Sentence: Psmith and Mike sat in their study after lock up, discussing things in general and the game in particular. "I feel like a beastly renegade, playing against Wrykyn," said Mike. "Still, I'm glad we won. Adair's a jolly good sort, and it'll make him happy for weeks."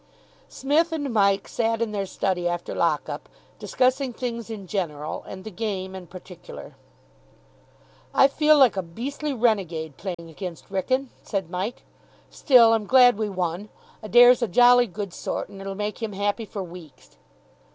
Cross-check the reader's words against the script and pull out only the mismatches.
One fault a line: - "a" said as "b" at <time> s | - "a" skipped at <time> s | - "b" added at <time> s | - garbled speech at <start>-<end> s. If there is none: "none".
none